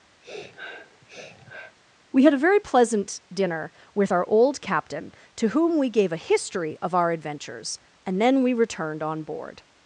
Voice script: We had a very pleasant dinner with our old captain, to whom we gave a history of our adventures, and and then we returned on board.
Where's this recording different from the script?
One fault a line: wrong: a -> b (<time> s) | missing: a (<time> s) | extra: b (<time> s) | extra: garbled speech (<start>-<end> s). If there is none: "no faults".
missing: and (8.2 s)